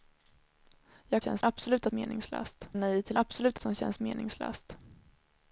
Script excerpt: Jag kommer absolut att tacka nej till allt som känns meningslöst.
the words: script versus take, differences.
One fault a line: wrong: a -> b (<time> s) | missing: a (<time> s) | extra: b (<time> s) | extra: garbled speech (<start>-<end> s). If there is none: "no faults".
wrong: kommer -> känns (1.2 s)
wrong: tacka -> meningslöst (1.9 s)
wrong: allt -> absolut (3.2 s)